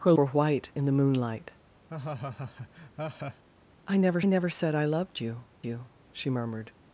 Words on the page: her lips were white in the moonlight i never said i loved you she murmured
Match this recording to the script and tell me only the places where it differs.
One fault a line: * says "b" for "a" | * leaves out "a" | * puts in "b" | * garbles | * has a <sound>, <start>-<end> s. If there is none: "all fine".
* leaves out "lips"
* has a laugh, 1.9-3.4 s
* puts in "never"
* puts in "you"